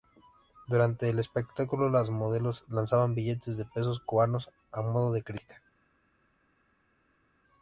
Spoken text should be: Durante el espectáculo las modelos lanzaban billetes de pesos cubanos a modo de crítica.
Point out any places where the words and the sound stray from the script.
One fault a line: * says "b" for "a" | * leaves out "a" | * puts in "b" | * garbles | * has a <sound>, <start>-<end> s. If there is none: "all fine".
all fine